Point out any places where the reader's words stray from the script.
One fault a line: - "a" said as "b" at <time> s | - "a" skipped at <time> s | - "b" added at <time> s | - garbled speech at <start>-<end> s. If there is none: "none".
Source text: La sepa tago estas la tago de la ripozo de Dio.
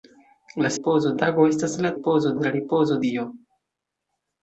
- "sepa" said as "ripozo" at 0.7 s
- "tago" said as "ripozo" at 1.9 s
- "de" skipped at 3.0 s